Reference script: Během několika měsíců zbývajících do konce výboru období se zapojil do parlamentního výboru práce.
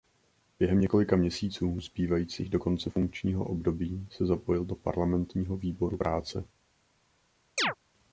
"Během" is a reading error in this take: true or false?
false